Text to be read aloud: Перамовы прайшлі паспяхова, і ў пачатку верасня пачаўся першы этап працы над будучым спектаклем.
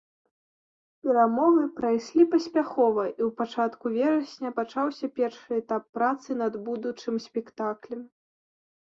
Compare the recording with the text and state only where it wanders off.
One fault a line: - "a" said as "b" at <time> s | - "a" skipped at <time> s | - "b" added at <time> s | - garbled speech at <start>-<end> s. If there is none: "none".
none